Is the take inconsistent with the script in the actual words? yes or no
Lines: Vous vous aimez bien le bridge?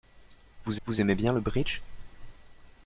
no